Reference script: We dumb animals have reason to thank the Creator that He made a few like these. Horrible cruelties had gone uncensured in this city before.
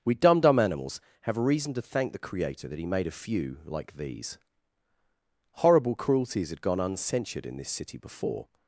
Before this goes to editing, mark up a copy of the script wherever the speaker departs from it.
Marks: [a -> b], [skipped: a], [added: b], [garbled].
We dumb [added: dumb] animals have reason to thank the Creator that He made a few like these. Horrible cruelties had gone uncensured in this city before.